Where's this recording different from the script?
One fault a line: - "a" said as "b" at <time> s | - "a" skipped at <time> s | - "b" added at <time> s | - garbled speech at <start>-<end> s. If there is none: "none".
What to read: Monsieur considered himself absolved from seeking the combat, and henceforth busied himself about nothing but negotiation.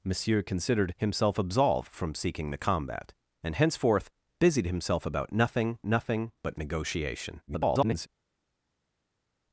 - "nothing" added at 5.8 s
- garbled speech at 7.5-8.1 s